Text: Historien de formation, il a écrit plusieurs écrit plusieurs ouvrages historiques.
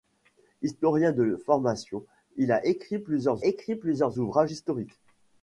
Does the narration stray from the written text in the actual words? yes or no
no